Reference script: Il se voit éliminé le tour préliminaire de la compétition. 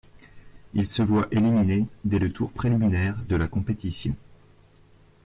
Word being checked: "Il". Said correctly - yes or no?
yes